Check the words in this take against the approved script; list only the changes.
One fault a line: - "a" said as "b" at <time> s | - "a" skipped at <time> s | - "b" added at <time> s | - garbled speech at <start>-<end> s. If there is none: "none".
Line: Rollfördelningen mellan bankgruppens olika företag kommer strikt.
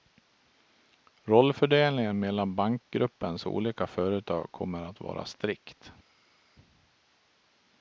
- "att vara" added at 4.8 s